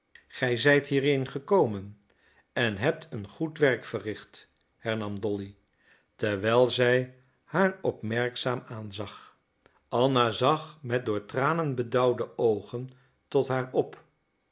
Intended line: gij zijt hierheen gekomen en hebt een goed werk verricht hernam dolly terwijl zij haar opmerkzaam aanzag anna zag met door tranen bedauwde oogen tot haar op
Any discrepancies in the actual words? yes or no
no